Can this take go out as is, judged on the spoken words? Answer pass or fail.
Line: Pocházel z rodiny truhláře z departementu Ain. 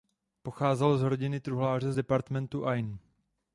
pass